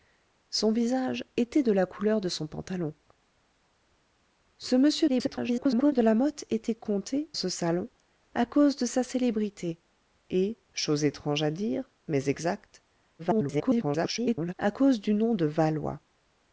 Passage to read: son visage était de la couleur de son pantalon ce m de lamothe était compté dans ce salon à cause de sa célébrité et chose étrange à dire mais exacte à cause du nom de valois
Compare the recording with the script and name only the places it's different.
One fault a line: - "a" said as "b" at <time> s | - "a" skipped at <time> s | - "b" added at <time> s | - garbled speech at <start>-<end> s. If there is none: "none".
- garbled speech at 5.1-5.9 s
- "dans" skipped at 7.3 s
- garbled speech at 13.2-14.5 s